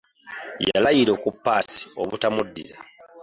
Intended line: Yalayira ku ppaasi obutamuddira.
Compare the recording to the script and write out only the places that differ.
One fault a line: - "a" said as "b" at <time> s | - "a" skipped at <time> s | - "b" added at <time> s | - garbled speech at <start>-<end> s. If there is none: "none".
none